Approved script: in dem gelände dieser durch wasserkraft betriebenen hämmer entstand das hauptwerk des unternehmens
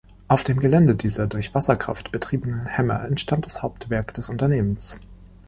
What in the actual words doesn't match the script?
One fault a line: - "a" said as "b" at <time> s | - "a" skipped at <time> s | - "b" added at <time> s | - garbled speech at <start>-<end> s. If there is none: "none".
- "in" said as "auf" at 0.3 s